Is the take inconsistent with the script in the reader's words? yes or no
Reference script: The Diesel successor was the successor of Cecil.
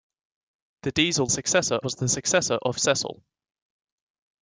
no